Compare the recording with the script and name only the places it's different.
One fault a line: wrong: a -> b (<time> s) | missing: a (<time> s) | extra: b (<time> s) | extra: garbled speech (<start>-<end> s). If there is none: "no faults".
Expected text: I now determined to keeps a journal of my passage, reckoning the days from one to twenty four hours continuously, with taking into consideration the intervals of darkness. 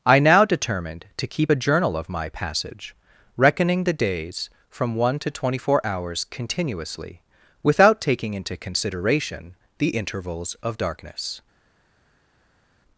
wrong: keeps -> keep (1.3 s)
wrong: with -> without (7.6 s)